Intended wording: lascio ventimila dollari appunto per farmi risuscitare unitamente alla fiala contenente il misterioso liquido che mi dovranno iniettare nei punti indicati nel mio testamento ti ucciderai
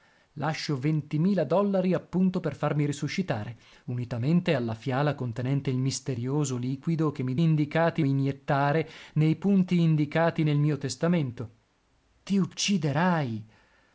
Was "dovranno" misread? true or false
true